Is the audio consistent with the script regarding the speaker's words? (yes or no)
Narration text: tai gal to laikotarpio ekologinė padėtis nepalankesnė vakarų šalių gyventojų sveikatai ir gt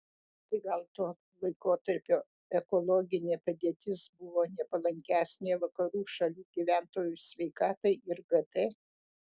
no